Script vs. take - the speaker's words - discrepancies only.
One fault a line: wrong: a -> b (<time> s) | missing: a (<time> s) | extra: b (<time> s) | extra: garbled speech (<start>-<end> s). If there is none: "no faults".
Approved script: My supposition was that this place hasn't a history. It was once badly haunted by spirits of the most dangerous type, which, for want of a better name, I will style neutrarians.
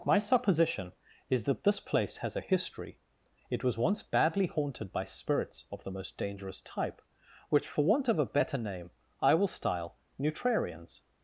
wrong: was -> is (1.3 s)
wrong: hasn't -> has (2.2 s)